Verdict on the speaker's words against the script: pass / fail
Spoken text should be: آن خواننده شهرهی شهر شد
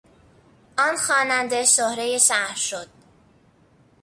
pass